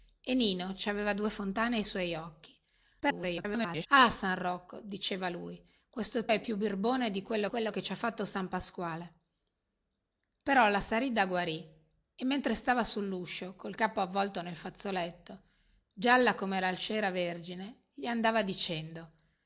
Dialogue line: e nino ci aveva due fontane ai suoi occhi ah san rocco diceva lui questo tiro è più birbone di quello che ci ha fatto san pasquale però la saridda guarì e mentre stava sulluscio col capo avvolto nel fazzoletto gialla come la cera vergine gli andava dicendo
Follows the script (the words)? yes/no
no